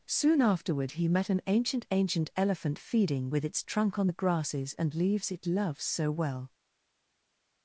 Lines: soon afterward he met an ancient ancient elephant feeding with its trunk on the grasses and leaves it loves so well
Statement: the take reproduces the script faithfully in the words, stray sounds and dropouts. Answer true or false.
true